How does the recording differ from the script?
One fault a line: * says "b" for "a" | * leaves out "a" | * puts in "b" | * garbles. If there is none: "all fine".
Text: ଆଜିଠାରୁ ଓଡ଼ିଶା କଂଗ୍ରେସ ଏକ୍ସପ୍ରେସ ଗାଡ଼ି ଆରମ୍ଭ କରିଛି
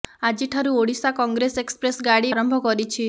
all fine